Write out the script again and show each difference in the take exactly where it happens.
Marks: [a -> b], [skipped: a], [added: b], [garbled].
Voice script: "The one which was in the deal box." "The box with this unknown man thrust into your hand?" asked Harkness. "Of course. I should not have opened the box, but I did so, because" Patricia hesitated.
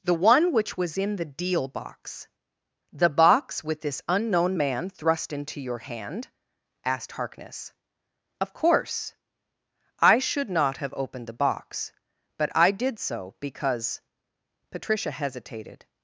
"The one which was in the deal box." "The box with this unknown man thrust into your hand?" asked Harkness. "Of course. I should not have opened the box, but I did so, because" Patricia hesitated.